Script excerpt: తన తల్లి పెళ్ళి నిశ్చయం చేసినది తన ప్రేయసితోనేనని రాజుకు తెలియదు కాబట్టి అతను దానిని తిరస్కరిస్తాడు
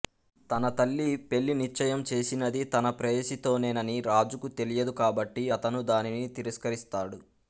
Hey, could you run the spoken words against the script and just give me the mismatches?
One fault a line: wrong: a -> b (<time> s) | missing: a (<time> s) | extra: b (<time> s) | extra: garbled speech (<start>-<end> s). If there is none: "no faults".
no faults